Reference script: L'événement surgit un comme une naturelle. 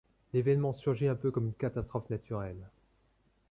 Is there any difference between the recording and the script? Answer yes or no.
yes